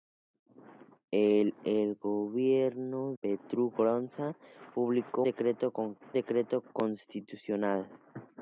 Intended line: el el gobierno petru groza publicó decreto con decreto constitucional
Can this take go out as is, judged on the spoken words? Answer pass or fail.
pass